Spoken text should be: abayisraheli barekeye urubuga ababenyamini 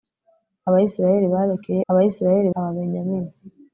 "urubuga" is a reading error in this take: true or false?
true